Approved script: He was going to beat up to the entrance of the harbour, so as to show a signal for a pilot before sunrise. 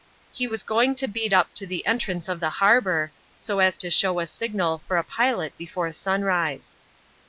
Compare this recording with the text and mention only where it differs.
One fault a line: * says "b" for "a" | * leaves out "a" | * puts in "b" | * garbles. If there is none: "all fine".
all fine